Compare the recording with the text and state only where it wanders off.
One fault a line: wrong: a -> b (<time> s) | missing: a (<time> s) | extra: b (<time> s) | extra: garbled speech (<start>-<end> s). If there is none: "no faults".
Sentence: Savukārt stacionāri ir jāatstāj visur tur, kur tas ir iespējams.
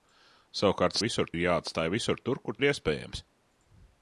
wrong: stacionāri -> visur (1.0 s)
missing: tas (2.6 s)